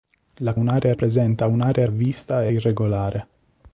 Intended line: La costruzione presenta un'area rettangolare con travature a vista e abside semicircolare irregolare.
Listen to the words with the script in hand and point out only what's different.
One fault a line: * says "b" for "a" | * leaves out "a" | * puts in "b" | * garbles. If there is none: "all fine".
* says "un'area" for "costruzione"
* leaves out "rettangolare con travature"
* leaves out "abside semicircolare"